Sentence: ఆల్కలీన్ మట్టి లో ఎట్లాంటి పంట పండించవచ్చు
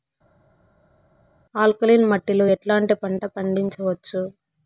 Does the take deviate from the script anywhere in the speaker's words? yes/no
no